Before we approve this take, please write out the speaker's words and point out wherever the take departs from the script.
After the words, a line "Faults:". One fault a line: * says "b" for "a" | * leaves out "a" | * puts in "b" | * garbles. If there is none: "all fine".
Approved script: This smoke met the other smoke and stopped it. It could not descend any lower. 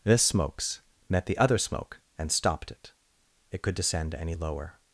This smokes met the other smoke and stopped it. It could descend any lower.
Faults:
* says "smokes" for "smoke"
* leaves out "not"